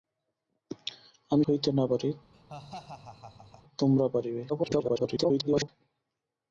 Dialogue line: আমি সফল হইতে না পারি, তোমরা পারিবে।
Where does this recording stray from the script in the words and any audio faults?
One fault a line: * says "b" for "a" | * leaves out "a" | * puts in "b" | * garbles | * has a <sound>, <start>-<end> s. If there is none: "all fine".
* leaves out "সফল"
* has a laugh, 2.3-3.6 s
* garbles